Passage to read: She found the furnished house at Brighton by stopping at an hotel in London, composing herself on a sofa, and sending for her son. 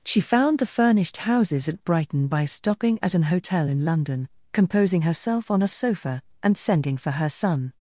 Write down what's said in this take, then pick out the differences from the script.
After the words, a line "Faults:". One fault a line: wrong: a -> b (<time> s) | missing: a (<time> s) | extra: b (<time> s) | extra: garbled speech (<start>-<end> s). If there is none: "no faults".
She found the furnished houses at Brighton by stopping at an hotel in London, composing herself on a sofa, and sending for her son.
Faults:
wrong: house -> houses (1.2 s)